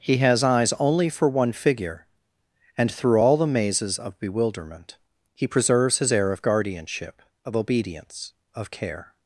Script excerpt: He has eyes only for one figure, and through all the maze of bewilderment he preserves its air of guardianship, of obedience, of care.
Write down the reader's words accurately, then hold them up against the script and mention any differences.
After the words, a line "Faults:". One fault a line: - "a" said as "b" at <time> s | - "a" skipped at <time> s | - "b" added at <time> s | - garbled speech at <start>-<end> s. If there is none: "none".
He has eyes only for one figure, and through all the mazes of bewilderment he preserves his air of guardianship, of obedience, of care.
Faults:
- "maze" said as "mazes" at 3.4 s
- "its" said as "his" at 6.0 s